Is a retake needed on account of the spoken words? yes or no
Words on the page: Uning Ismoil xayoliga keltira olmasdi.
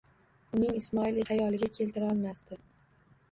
no